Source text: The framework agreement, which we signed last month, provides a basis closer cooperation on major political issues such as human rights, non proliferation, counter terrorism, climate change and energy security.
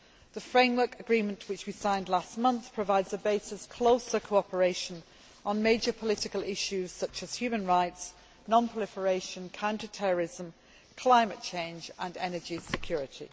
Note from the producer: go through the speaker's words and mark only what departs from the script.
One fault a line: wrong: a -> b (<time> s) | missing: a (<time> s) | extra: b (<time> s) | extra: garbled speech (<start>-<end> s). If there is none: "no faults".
no faults